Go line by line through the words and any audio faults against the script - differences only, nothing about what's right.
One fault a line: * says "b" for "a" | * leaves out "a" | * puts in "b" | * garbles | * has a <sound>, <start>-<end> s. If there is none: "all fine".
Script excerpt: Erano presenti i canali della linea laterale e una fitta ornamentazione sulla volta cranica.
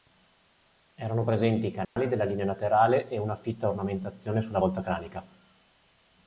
* has a dropout, 1.8-2.0 s